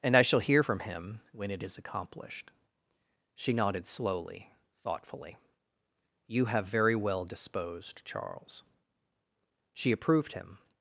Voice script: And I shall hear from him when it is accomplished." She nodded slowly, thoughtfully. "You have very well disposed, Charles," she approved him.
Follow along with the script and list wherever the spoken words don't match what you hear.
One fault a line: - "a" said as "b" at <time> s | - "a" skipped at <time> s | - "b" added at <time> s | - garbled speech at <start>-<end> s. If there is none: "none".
none